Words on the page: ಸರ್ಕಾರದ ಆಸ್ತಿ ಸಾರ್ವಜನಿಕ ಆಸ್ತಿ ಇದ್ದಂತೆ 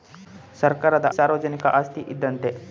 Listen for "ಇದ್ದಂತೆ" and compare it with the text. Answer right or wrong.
right